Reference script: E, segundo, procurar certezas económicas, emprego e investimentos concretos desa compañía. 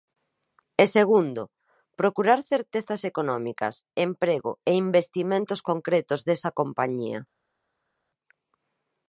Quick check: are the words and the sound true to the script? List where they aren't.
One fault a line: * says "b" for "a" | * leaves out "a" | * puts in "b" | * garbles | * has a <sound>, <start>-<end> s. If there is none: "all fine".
all fine